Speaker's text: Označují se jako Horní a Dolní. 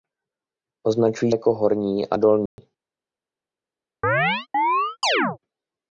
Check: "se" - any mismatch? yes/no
yes